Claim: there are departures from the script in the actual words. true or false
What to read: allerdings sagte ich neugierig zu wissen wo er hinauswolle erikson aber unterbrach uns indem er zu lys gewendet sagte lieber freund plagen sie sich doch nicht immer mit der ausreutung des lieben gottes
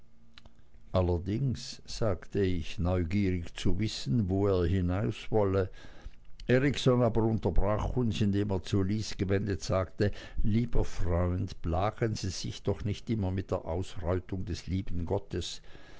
false